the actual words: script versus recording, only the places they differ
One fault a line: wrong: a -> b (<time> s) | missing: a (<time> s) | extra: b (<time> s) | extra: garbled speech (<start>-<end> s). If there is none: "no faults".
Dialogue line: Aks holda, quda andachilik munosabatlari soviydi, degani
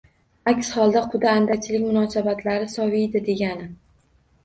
no faults